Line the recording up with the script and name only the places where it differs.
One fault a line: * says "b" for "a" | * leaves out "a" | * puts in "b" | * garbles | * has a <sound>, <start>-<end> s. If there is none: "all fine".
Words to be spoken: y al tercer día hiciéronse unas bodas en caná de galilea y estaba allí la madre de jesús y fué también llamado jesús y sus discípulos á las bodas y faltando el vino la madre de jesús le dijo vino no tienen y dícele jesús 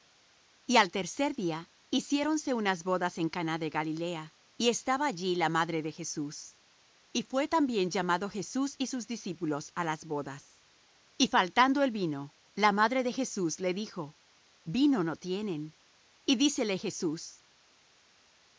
all fine